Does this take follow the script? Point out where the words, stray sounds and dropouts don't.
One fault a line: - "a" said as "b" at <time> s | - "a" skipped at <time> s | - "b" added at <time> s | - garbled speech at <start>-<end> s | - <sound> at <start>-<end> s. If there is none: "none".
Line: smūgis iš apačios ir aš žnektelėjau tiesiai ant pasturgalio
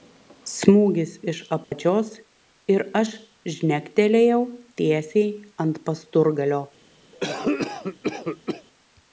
- dropout at 1.6-1.7 s
- cough at 7.1-8.7 s